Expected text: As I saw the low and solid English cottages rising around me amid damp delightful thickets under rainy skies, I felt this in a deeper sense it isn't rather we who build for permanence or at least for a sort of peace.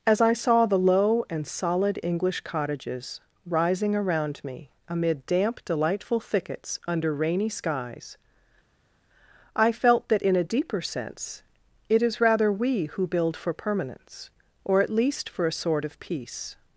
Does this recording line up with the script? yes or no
no